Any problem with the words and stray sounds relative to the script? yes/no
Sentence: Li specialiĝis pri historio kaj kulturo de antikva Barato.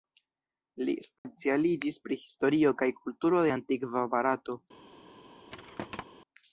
yes